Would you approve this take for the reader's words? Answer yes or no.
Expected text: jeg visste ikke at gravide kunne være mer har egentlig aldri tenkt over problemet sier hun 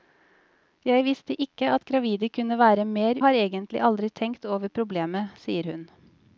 yes